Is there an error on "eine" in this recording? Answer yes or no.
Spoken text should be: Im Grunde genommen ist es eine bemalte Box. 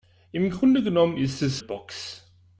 yes